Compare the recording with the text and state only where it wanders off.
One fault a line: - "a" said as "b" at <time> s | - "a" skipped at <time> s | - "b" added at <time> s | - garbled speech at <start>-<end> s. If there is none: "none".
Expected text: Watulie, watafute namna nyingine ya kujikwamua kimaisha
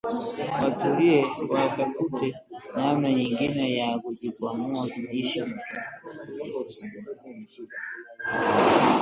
none